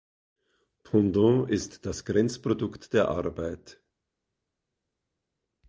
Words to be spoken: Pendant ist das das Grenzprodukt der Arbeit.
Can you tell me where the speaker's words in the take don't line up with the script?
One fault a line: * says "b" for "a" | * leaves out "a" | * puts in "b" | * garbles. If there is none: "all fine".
* leaves out "das"